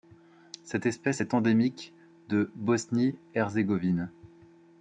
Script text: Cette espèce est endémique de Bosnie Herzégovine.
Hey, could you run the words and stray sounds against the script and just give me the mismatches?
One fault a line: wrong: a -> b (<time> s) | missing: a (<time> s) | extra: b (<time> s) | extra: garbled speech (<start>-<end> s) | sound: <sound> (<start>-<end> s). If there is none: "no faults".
no faults